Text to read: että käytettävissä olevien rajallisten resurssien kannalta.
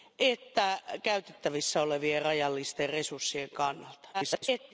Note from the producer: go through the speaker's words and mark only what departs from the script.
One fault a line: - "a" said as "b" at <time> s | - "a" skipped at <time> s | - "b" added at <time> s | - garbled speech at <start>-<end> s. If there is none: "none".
- garbled speech at 4.1-4.7 s